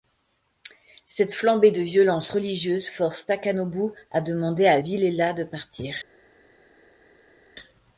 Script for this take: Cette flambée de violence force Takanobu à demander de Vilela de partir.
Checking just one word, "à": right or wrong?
right